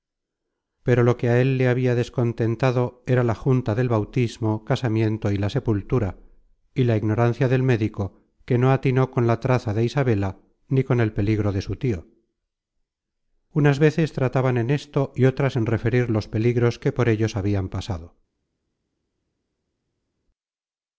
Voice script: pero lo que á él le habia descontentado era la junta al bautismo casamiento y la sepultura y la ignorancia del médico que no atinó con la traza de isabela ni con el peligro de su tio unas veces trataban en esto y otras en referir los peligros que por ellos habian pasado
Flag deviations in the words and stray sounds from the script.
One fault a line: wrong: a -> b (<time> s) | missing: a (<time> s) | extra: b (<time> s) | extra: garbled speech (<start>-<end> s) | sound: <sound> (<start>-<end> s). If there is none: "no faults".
wrong: al -> del (3.7 s)